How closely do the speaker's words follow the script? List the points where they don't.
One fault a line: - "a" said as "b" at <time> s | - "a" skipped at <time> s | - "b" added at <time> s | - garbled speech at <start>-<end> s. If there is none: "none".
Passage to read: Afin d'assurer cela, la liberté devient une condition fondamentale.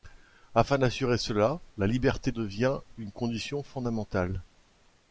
none